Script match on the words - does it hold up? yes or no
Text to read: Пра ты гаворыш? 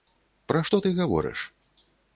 no